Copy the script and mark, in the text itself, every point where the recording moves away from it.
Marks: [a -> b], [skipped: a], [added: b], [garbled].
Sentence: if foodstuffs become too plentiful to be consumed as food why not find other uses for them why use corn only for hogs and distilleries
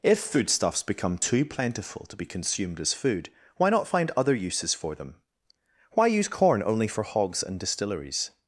if foodstuffs become too plentiful to be consumed as food why not find other uses for them why use corn only for hogs and distilleries